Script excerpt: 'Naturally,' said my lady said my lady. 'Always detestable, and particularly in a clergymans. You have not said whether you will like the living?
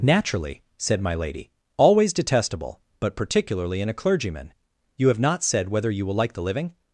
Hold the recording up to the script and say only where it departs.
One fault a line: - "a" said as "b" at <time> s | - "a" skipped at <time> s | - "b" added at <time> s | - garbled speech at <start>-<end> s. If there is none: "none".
- "said my lady" skipped at 1.5 s
- "and" said as "but" at 3.0 s
- "clergymans" said as "clergyman" at 3.9 s